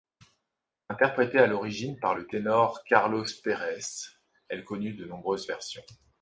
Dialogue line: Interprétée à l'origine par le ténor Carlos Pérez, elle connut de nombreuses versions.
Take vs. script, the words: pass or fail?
pass